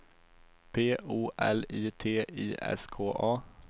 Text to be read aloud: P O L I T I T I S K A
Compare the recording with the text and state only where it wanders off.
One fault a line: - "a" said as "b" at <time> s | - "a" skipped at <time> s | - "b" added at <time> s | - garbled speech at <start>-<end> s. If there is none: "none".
- "T I" skipped at 2.5 s